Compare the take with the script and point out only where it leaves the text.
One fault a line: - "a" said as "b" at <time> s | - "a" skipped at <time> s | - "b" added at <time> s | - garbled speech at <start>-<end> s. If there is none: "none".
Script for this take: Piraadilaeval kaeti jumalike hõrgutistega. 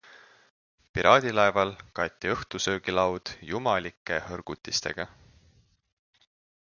- "õhtusöögilaud" added at 2.3 s